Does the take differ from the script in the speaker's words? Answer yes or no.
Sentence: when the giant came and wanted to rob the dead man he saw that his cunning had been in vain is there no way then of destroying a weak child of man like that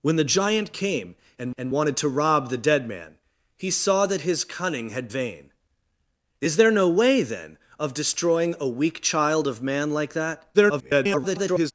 yes